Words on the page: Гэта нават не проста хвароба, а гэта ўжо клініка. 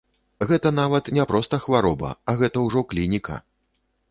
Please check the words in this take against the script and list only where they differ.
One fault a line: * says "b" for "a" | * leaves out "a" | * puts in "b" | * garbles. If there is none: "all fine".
all fine